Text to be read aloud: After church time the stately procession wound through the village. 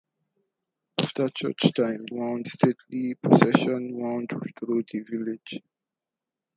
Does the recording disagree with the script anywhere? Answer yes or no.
yes